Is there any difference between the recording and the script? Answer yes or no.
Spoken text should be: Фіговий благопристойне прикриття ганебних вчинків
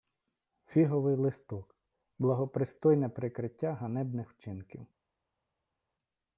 yes